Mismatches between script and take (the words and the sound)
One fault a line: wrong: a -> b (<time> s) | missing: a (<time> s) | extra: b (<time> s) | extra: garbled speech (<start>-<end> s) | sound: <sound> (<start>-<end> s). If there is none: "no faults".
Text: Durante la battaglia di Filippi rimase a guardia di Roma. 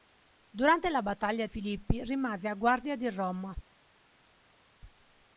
missing: di (1.4 s)